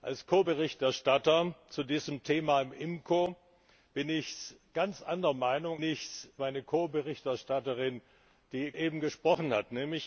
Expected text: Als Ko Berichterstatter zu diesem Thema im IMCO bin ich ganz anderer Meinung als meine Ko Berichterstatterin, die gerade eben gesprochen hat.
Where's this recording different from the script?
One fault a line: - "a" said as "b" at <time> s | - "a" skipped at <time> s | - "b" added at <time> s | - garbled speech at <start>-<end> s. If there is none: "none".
- "als" said as "ich" at 5.8 s
- "gerade" skipped at 8.7 s